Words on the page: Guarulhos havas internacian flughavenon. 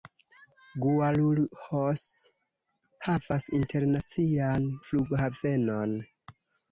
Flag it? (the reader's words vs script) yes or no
no